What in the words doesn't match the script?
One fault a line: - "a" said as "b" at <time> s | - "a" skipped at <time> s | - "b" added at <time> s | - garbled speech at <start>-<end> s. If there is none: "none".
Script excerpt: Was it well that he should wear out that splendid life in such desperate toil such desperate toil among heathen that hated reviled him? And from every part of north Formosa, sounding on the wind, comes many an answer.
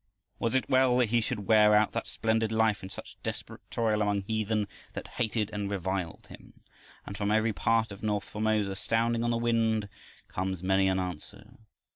- "such desperate toil" skipped at 4.0 s
- "and" added at 5.5 s